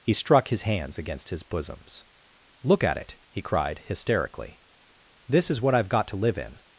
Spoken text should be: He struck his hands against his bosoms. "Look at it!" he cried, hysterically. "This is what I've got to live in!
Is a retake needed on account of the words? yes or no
no